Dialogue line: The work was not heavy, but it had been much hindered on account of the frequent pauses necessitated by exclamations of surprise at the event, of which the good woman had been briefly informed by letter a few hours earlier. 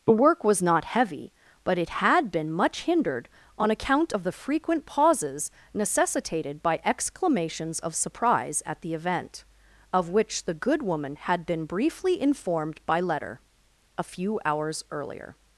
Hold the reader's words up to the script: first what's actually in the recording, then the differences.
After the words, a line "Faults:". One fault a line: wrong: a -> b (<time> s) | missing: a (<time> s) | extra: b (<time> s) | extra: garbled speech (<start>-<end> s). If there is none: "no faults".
The work was not heavy, but it had been much hindered on account of the frequent pauses necessitated by exclamations of surprise at the event, of which the good woman had been briefly informed by letter a few hours earlier.
Faults:
no faults